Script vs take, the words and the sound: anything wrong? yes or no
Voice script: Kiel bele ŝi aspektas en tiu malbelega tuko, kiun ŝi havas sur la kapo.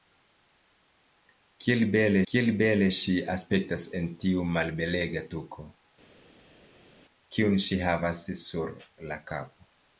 yes